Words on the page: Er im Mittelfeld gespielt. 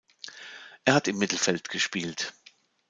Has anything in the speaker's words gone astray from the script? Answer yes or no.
yes